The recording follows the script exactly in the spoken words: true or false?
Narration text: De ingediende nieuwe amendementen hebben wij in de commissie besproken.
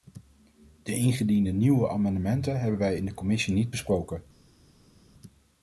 false